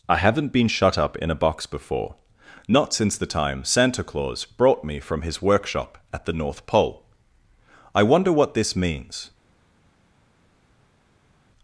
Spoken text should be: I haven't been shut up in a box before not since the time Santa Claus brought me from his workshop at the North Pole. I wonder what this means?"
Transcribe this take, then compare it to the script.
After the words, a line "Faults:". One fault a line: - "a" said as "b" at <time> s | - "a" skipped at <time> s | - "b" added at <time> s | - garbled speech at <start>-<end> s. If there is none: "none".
I haven't been shut up in a box before not since the time Santa Claus brought me from his workshop at the North Pole. I wonder what this means?"
Faults:
none